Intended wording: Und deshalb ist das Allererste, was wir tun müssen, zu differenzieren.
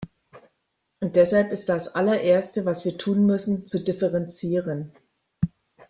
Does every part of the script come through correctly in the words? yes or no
yes